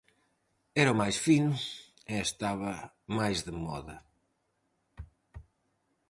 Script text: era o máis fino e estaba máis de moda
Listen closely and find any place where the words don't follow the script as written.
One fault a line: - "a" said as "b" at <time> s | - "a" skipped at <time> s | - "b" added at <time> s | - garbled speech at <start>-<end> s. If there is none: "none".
none